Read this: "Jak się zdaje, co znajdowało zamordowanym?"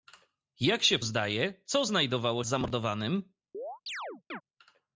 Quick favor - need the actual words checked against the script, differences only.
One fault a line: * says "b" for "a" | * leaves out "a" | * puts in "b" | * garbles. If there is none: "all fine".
all fine